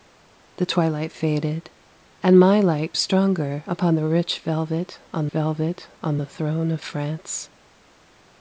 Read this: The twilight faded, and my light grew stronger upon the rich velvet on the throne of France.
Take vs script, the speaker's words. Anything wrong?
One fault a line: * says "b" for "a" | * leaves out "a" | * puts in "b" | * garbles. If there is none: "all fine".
* leaves out "grew"
* puts in "velvet on"